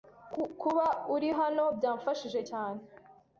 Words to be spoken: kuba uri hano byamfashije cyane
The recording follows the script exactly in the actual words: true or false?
true